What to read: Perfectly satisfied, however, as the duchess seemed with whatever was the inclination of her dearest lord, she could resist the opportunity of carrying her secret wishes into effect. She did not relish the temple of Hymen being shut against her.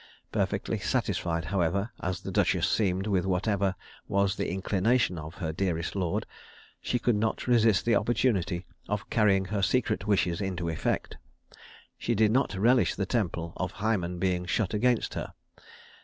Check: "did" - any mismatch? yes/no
no